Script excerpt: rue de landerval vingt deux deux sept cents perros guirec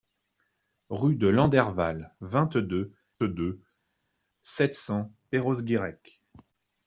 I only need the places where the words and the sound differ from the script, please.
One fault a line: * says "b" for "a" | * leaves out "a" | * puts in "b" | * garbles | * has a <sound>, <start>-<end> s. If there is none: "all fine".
all fine